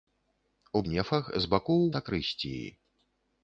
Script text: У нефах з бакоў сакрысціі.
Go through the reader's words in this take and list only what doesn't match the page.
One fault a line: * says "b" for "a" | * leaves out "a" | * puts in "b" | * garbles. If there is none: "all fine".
all fine